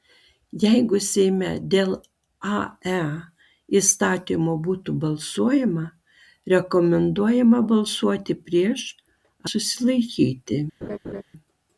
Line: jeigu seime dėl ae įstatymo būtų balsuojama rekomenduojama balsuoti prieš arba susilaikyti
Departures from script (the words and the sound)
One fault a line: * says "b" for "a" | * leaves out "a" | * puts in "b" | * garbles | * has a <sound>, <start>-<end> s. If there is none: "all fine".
* leaves out "arba"
* has a laugh, 10.8-11.2 s